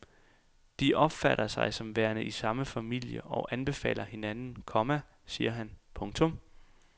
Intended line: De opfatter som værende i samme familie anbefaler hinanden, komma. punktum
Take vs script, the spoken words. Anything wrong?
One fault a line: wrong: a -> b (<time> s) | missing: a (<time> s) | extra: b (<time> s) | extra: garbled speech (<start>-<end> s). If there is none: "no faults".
extra: sig (1.5 s)
extra: og (3.2 s)
extra: siger han (5.2 s)